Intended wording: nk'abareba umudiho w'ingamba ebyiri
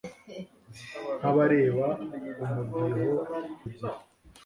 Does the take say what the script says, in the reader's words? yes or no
no